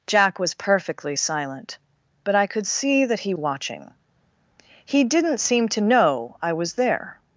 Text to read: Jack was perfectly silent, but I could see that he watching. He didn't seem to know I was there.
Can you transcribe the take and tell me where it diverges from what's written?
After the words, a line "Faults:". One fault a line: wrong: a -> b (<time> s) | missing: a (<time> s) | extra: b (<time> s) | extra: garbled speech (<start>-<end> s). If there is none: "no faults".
Jack was perfectly silent, but I could see that he watching. He didn't seem to know I was there.
Faults:
no faults